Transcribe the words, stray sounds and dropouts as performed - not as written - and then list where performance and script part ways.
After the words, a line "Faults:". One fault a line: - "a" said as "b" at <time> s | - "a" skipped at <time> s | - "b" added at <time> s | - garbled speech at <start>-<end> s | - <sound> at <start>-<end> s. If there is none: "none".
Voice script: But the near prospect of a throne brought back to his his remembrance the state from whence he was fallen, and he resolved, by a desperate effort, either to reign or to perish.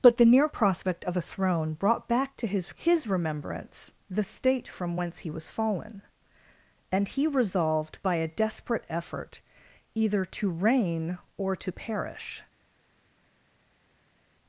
But the near prospect of a throne brought back to his his remembrance the state from whence he was fallen, and he resolved, by a desperate effort, either to reign or to perish.
Faults:
none